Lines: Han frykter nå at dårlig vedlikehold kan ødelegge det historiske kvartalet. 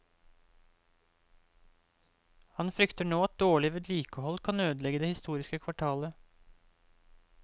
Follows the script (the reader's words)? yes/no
yes